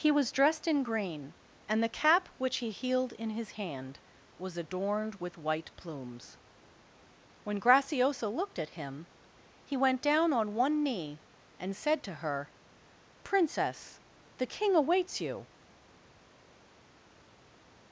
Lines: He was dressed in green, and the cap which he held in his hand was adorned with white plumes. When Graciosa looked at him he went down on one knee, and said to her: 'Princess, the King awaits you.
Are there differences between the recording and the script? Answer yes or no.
yes